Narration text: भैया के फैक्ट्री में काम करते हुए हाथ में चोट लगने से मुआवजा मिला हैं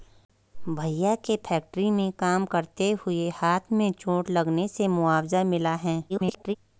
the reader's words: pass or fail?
fail